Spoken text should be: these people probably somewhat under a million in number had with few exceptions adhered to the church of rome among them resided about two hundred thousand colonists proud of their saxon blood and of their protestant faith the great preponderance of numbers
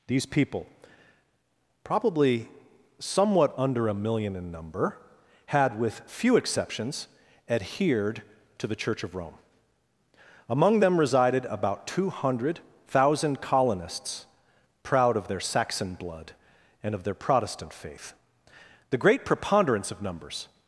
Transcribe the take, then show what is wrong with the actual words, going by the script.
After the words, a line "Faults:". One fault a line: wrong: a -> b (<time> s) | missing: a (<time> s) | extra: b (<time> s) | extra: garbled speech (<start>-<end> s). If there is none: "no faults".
these people probably somewhat under a million in number had with few exceptions adhered to the church of rome among them resided about two hundred thousand colonists proud of their saxon blood and of their protestant faith the great preponderance of numbers
Faults:
no faults